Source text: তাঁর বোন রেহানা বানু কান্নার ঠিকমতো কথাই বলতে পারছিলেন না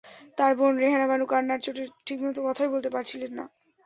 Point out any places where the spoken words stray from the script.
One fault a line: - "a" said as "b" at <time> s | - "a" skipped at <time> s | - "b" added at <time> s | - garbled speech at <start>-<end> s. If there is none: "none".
- "চোটে" added at 1.6 s